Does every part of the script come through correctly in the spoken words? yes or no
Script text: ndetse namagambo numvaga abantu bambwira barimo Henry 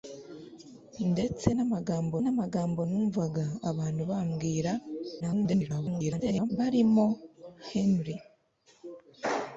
no